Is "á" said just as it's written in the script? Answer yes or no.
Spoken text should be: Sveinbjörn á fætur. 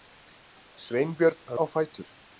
yes